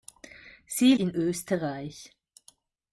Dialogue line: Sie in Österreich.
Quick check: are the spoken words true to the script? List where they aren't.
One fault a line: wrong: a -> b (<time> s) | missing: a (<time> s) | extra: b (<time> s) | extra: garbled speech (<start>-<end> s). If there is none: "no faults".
no faults